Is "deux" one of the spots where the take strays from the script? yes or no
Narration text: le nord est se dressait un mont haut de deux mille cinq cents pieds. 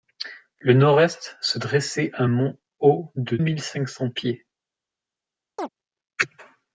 yes